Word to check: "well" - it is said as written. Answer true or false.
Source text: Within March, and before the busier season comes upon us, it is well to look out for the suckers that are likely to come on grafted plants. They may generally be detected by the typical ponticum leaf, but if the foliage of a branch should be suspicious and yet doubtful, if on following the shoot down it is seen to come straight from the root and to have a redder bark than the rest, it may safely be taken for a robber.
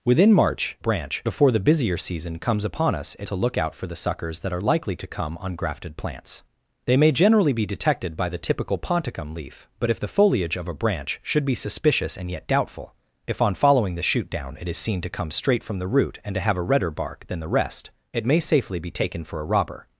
false